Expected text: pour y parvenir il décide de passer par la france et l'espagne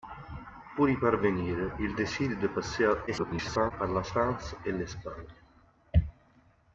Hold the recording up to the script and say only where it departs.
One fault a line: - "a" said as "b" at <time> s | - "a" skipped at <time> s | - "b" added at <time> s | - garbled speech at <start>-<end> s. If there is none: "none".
- garbled speech at 3.1-3.7 s